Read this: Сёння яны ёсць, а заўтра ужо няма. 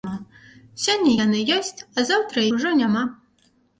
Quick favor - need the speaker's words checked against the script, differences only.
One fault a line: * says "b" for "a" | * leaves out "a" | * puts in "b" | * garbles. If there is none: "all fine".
all fine